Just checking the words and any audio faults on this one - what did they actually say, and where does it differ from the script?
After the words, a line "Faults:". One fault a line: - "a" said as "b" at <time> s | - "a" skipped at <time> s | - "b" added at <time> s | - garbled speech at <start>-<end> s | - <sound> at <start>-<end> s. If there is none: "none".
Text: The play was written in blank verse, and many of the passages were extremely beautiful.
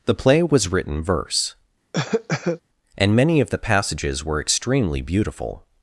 The play was written verse, and many of the passages were extremely beautiful.
Faults:
- "in blank" skipped at 1.0 s
- cough at 1.9-2.6 s